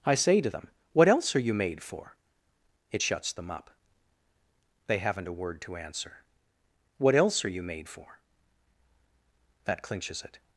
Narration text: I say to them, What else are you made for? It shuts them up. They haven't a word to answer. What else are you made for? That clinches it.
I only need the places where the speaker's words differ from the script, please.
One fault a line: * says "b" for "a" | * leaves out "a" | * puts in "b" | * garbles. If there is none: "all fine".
all fine